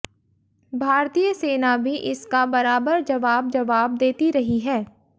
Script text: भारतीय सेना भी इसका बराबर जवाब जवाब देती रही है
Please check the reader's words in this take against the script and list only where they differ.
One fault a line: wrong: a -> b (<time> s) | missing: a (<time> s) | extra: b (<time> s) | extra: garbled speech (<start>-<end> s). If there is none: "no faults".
no faults